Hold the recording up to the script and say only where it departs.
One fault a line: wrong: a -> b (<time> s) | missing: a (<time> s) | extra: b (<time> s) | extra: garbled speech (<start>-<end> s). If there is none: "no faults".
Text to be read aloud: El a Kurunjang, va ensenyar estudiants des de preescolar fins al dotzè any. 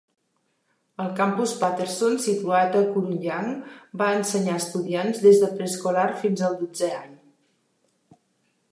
extra: campus Patterson situat (1.2 s)